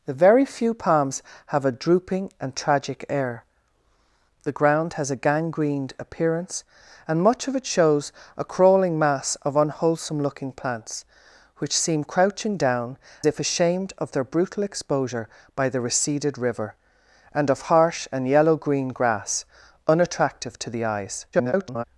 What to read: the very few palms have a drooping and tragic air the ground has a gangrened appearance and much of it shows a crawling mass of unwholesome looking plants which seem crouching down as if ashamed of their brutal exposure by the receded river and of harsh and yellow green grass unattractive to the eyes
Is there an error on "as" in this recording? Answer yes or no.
yes